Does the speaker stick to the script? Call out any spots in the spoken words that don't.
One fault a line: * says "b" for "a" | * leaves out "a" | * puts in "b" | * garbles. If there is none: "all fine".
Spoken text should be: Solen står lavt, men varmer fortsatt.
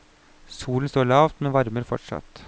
all fine